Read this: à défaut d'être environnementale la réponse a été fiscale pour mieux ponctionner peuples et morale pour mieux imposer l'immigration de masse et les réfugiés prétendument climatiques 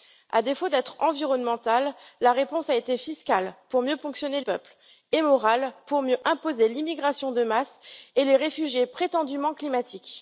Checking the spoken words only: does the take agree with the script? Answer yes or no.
yes